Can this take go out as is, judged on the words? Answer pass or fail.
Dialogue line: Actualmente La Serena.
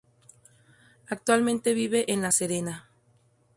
fail